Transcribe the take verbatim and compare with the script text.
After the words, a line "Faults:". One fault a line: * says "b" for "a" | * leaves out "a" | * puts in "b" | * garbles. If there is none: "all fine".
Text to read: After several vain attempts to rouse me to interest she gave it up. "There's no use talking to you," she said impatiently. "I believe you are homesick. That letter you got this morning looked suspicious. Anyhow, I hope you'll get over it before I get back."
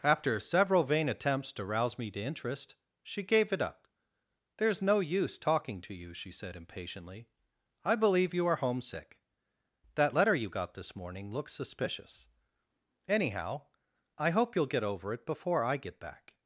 After several vain attempts to rouse me to interest she gave it up. "There's no use talking to you," she said impatiently. "I believe you are homesick. That letter you got this morning looks suspicious. Anyhow, I hope you'll get over it before I get back."
Faults:
* says "looks" for "looked"